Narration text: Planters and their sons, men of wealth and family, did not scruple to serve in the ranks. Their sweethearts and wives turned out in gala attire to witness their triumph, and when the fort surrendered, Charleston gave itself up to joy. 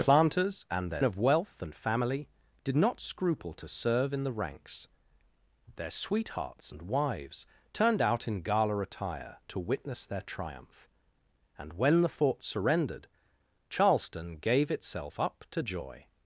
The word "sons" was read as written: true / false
false